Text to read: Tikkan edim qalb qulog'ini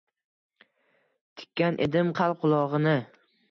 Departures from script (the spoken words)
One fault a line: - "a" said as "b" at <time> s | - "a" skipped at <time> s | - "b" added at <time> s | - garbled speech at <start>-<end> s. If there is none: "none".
none